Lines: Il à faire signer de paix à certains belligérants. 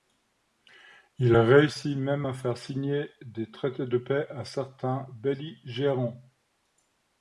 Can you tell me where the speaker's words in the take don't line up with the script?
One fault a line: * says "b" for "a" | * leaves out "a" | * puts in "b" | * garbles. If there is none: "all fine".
* puts in "réussit même"
* puts in "des traités"